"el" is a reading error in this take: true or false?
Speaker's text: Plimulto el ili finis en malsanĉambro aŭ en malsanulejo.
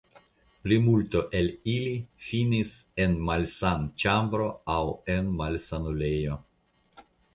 false